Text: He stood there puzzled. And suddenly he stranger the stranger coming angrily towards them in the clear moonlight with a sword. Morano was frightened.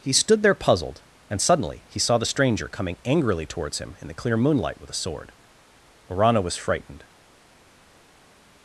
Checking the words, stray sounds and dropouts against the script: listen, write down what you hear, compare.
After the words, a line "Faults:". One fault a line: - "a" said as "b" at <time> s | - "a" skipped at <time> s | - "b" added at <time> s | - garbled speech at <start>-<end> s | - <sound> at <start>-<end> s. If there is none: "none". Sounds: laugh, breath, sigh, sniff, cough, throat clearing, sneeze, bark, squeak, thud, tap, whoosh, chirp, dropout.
He stood there puzzled. And suddenly he saw the stranger coming angrily towards him in the clear moonlight with a sword. Morano was frightened.
Faults:
- "stranger" said as "saw" at 2.0 s
- "them" said as "him" at 3.8 s